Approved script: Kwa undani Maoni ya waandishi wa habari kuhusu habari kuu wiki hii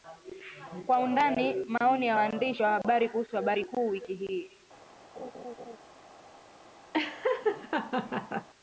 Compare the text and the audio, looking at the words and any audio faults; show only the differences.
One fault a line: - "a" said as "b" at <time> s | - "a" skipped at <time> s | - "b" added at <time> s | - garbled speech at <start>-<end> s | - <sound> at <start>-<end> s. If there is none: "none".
- laugh at 5.2-5.8 s
- laugh at 6.9-8.5 s